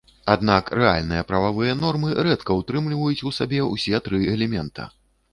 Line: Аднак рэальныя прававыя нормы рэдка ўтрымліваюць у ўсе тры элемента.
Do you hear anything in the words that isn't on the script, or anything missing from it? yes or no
yes